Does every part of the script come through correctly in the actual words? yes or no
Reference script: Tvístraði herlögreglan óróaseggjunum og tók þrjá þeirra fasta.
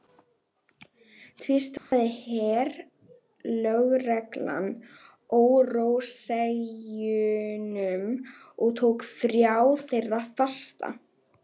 yes